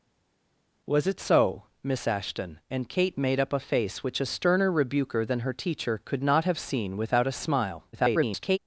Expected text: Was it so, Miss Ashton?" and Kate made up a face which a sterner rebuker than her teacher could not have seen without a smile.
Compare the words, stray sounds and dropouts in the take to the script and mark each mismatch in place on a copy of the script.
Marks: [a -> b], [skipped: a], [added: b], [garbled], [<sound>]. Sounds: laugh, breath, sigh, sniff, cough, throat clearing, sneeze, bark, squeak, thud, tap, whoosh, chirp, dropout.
Was it so, Miss Ashton?" and Kate made up a face which a sterner rebuker than her teacher could not have seen without a smile. [garbled]